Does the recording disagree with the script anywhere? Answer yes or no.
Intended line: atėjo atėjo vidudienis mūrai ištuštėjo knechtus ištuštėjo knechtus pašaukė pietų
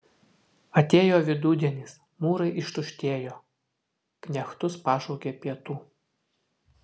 yes